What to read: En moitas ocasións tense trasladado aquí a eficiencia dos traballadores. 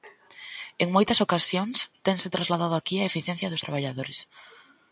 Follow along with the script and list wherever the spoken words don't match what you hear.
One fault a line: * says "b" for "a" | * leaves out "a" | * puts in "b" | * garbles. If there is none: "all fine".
all fine